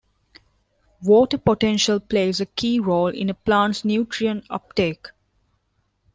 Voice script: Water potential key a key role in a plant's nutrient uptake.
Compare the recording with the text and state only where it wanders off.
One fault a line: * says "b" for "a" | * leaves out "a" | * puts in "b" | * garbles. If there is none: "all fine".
* says "plays" for "key"